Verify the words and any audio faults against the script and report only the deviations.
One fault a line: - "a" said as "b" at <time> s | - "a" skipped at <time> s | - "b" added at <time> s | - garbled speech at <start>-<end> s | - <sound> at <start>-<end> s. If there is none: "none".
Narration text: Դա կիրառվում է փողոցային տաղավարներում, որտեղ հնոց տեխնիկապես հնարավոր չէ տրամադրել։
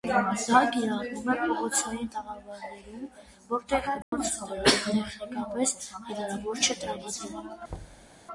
- dropout at 4.0-4.1 s
- thud at 7.7-8.1 s